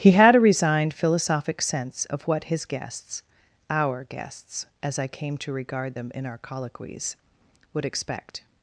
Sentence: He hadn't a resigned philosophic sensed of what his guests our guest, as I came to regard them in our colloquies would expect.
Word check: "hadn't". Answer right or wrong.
wrong